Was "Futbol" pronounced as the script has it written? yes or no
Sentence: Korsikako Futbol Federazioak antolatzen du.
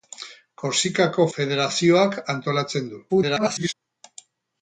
no